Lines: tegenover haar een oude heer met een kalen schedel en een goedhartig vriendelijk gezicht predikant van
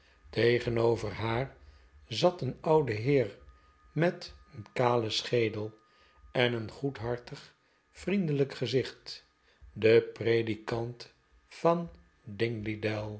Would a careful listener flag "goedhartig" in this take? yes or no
no